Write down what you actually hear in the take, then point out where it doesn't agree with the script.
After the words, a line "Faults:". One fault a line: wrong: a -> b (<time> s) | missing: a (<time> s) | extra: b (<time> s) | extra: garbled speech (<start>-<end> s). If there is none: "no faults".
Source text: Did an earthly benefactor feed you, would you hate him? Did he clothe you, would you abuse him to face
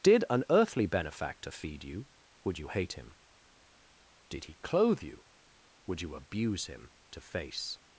Did an earthly benefactor feed you, would you hate him? Did he clothe you, would you abuse him to face
Faults:
no faults